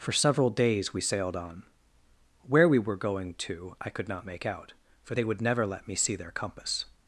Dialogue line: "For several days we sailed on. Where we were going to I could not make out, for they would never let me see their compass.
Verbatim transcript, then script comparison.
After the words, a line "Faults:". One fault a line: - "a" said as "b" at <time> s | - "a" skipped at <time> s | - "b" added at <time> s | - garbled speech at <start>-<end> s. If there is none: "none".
"For several days we sailed on. Where we were going to I could not make out, for they would never let me see their compass.
Faults:
none